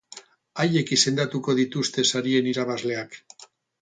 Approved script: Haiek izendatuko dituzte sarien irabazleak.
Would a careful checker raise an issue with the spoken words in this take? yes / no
no